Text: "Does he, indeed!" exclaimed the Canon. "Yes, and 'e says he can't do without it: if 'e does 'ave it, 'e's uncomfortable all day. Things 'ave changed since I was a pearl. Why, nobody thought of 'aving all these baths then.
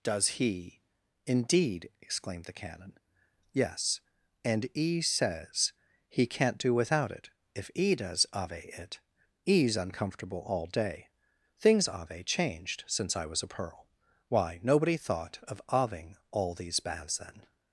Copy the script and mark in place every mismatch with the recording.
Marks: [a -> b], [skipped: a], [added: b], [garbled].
"Does he, indeed!" exclaimed the Canon. "Yes, and 'e says he can't do without it: if 'e does 'ave it, 'e's uncomfortable all day. Things 'ave changed since I was a pearl. Why, nobody thought of 'aving all these baths then.